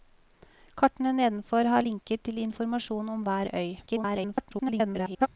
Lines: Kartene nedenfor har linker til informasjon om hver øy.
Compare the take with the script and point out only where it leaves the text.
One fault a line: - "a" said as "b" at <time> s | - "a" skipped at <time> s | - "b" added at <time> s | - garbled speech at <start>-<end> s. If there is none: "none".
- garbled speech at 3.9-5.3 s